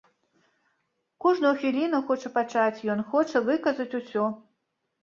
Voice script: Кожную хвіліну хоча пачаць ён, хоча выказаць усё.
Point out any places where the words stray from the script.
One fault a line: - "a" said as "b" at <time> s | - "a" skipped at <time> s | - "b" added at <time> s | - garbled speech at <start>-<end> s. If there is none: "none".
none